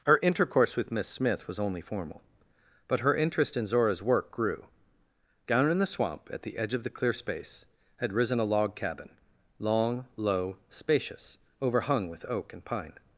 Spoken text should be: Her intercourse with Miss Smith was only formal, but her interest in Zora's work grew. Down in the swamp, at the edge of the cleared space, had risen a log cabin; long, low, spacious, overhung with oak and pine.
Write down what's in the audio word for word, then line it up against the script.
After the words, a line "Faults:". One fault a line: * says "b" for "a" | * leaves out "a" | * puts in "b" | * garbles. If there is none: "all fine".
Her intercourse with Miss Smith was only formal, but her interest in Zora's work grew. Down in the swamp, at the edge of the clear space, had risen a log cabin; long, low, spacious, overhung with oak and pine.
Faults:
* says "clear" for "cleared"